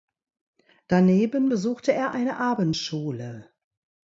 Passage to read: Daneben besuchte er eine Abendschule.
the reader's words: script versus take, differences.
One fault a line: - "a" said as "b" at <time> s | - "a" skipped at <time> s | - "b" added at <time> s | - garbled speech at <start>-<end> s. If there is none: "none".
none